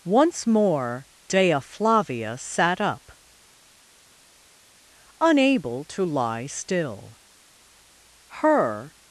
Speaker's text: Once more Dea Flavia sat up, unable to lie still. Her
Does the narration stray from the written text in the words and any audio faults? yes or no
no